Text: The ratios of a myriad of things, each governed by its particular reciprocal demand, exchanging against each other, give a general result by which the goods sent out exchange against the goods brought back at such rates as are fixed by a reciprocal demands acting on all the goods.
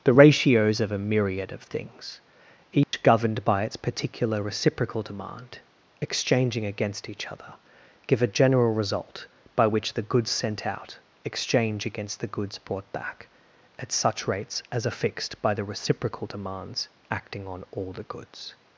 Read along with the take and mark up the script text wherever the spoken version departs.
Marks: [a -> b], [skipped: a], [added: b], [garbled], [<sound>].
The ratios of a myriad of things, each [dropout] governed by its particular reciprocal demand, exchanging against each other, give a general result by which the goods sent out exchange against the goods brought back at such rates as are fixed by [a -> the] reciprocal demands acting on all the goods.